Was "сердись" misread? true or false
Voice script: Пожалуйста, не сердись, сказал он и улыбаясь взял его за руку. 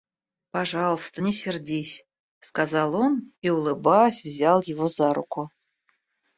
false